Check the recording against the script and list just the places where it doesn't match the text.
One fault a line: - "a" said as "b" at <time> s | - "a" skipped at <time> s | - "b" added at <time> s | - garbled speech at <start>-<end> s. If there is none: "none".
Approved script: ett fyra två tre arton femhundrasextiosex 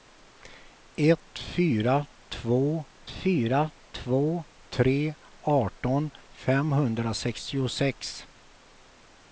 - "fyra två" added at 3.1 s